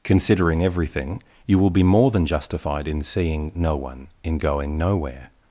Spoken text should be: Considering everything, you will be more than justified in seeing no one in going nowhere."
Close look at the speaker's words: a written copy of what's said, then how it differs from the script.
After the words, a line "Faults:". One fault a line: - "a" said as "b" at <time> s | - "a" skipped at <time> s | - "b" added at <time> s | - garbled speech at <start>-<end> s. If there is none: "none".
Considering everything, you will be more than justified in seeing no one in going nowhere."
Faults:
none